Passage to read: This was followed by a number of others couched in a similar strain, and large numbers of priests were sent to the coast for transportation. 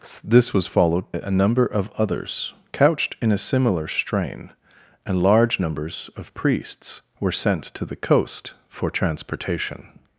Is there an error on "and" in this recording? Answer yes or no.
no